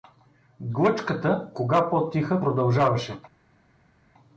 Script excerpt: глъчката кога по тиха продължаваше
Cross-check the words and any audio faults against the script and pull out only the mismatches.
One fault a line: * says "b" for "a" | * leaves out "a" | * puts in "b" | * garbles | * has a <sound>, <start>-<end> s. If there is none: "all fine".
all fine